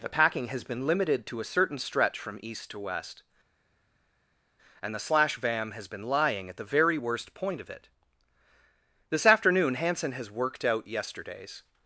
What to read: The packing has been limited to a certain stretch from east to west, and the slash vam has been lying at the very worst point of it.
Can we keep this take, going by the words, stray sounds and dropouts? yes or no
no